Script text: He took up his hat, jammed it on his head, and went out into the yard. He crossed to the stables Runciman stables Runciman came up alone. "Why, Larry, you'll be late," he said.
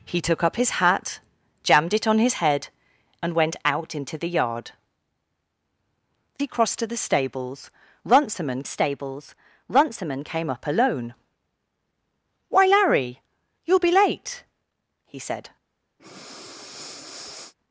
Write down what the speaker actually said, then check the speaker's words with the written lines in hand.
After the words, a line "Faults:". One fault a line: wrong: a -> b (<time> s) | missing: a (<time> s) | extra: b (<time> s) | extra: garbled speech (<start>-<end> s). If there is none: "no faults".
He took up his hat, jammed it on his head, and went out into the yard. He crossed to the stables Runciman stables Runciman came up alone. "Why, Larry, you'll be late," he said.
Faults:
no faults